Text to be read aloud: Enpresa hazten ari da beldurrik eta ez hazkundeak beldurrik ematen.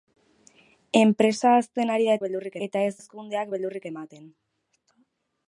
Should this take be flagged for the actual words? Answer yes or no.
no